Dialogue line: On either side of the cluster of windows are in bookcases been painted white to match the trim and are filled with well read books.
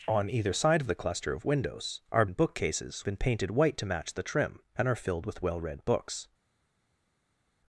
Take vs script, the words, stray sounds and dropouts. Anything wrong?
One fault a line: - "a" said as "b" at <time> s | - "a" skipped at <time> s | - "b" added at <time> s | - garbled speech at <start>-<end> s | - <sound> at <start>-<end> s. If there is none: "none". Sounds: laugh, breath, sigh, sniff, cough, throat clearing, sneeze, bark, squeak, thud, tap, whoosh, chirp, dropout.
none